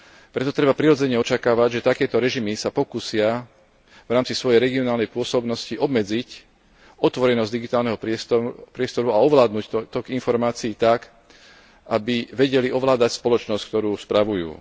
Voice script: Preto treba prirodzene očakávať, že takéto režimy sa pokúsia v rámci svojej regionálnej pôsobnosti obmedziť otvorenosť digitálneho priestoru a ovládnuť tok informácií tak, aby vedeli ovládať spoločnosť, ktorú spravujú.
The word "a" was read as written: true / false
true